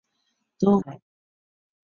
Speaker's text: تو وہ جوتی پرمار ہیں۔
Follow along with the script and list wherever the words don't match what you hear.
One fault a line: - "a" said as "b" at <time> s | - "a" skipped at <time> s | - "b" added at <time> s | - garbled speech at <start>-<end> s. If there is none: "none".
- "وہ جوتی پرمار" skipped at 0.7 s